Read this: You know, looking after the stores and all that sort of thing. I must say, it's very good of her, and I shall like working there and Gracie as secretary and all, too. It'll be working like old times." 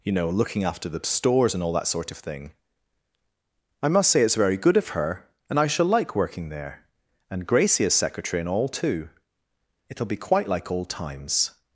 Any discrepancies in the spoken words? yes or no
yes